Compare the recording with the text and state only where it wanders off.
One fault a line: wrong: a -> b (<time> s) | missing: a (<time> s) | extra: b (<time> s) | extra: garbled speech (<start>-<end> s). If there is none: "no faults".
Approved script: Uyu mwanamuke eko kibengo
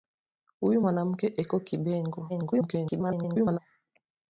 extra: garbled speech (2.3-3.6 s)